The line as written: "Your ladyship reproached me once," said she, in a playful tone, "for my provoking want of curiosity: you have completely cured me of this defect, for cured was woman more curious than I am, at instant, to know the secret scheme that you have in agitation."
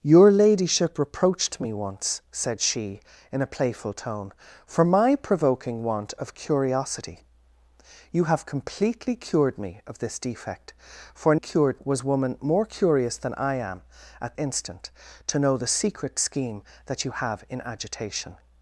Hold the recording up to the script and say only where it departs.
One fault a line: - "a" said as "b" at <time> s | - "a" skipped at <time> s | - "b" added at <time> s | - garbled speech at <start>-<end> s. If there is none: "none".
none